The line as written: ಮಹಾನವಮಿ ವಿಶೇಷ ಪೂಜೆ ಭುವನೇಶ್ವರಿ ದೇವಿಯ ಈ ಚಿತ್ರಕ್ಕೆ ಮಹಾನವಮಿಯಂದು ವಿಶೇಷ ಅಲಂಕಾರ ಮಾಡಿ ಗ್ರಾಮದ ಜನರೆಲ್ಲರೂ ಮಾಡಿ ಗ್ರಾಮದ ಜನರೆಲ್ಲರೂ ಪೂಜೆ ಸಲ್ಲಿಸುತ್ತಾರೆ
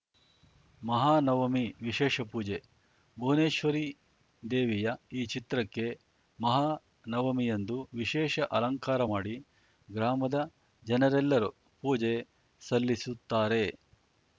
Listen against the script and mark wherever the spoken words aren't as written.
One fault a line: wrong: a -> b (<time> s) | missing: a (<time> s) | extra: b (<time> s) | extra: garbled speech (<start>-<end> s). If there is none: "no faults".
missing: ಮಾಡಿ ಗ್ರಾಮದ ಜನರೆಲ್ಲರೂ (11.5 s)